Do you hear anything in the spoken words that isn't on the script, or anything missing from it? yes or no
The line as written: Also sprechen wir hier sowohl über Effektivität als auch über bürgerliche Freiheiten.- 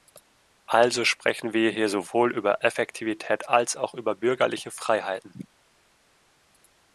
no